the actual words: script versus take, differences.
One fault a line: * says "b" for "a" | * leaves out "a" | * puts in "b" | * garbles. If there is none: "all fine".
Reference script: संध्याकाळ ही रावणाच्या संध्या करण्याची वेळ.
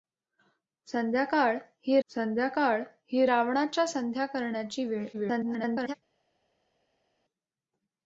* puts in "संध्याकाळ ही"
* garbles